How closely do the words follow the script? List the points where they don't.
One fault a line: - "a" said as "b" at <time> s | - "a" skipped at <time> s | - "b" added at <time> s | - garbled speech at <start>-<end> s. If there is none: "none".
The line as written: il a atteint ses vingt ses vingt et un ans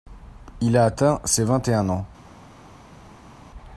- "ses vingt" skipped at 1.7 s